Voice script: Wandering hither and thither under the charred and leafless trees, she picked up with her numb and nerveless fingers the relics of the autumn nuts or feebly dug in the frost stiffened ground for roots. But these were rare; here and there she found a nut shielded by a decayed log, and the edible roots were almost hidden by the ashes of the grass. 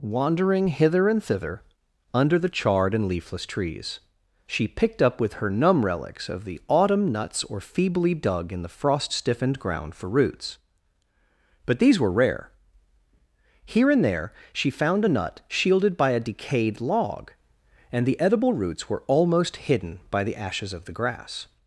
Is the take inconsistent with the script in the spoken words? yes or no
yes